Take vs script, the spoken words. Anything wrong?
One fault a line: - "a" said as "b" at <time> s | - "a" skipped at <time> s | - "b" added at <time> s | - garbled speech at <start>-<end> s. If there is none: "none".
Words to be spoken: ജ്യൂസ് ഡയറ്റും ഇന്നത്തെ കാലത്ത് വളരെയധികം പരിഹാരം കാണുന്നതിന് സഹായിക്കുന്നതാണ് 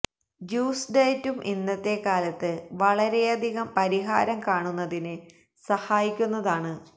none